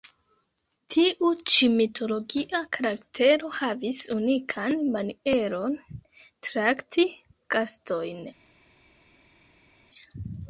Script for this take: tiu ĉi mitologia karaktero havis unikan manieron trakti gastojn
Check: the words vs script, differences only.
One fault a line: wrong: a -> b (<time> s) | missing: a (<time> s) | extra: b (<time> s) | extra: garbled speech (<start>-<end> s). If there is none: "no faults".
no faults